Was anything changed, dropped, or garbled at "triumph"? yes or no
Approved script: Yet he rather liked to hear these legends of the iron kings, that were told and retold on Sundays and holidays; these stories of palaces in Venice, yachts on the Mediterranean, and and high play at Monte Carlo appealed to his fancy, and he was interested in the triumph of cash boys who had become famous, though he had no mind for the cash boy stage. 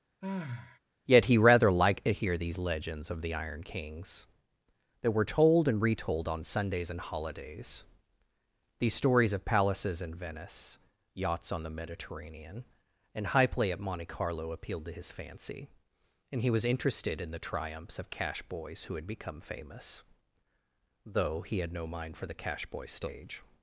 yes